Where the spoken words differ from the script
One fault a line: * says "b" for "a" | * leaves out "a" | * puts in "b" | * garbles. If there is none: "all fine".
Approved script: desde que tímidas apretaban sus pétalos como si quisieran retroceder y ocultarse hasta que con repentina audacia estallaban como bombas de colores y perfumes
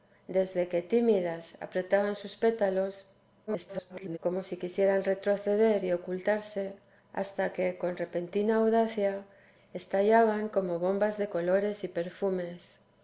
* garbles